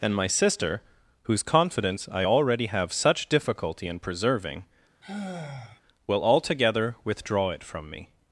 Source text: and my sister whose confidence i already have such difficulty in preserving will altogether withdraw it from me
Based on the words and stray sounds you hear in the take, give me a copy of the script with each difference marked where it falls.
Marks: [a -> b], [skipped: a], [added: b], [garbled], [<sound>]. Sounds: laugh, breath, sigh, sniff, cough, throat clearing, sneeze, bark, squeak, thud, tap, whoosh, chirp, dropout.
and my sister whose confidence i already have such difficulty in preserving [sigh] will altogether withdraw it from me